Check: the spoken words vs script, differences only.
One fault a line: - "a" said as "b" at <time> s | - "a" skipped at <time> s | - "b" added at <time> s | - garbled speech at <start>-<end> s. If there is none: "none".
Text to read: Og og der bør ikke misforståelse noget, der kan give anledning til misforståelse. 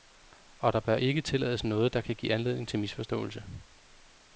- "og" skipped at 0.7 s
- "misforståelse" said as "tillades" at 1.2 s